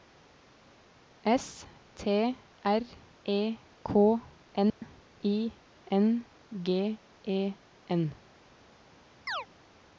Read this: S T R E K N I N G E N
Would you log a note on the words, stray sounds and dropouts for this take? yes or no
yes